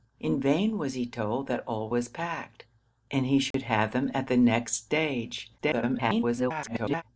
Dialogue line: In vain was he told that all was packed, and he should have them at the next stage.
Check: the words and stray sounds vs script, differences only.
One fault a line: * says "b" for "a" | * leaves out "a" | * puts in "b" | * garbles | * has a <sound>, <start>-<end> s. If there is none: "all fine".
* has a dropout, 3.5-3.5 s
* garbles